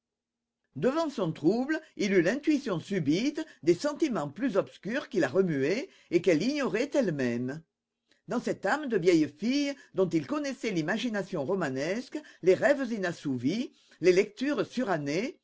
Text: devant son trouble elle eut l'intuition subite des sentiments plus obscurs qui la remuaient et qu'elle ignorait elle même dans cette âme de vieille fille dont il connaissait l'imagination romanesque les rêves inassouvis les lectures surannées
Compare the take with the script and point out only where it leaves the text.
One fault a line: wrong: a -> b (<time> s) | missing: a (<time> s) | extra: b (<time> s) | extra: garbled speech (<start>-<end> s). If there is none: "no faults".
wrong: elle -> il (2.0 s)